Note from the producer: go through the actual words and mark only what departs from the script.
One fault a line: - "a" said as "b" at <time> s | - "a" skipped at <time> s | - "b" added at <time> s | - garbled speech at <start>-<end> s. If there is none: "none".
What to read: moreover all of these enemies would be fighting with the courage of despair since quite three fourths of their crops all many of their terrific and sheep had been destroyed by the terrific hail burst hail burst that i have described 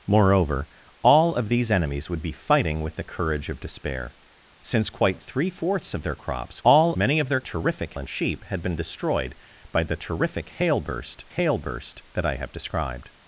none